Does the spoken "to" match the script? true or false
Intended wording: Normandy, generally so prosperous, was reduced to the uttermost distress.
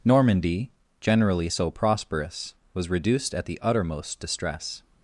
false